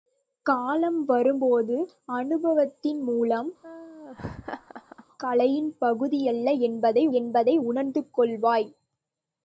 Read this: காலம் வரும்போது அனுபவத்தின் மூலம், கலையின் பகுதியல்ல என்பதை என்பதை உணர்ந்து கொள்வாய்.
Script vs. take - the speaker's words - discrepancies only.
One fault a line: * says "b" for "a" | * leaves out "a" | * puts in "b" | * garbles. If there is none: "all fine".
all fine